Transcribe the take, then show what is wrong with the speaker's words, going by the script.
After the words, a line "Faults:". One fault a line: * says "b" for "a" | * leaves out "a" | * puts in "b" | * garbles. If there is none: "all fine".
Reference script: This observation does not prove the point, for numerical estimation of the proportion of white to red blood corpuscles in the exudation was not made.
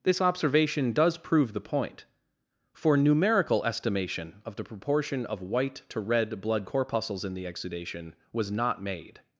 This observation does prove the point, for numerical estimation of the proportion of white to red blood corpuscles in the exudation was not made.
Faults:
* leaves out "not"